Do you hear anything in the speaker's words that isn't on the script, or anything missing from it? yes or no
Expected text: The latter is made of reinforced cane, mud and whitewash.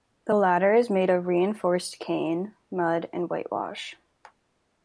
no